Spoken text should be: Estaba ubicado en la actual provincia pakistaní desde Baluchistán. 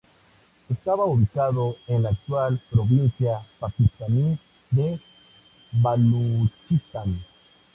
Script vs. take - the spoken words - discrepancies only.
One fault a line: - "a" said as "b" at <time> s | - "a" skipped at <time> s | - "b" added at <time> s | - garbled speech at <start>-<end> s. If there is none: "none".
- "desde" said as "de" at 4.7 s